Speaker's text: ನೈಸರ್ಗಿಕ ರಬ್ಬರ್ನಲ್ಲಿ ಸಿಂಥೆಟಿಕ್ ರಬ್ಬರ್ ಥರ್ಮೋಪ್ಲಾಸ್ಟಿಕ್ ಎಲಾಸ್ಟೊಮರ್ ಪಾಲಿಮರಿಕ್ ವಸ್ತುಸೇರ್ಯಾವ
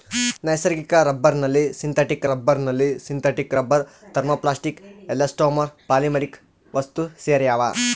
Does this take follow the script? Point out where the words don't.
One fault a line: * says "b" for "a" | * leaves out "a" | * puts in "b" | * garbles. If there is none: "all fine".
* puts in "ರಬ್ಬರ್ನಲ್ಲಿ ಸಿಂಥೆಟಿಕ್"